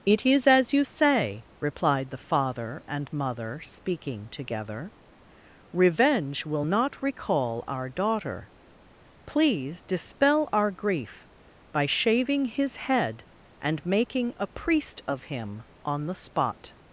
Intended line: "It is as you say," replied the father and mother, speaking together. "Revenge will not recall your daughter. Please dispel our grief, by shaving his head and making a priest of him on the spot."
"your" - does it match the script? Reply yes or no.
no